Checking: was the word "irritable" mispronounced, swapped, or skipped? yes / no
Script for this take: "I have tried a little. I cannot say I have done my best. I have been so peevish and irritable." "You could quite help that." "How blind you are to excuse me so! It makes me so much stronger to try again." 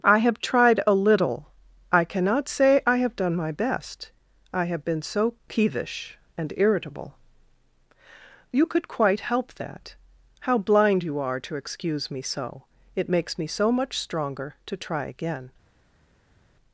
no